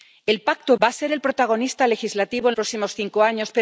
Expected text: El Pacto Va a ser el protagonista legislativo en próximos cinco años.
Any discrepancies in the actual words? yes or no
no